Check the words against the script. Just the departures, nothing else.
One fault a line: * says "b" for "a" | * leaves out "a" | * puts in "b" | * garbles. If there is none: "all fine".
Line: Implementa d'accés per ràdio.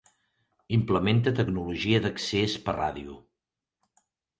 * puts in "tecnologia"